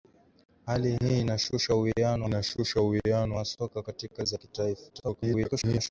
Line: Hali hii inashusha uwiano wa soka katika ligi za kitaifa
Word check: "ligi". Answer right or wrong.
wrong